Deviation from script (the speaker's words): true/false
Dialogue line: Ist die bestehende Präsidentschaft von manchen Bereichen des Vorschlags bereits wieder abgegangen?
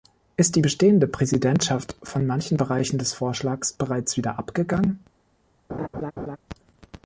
false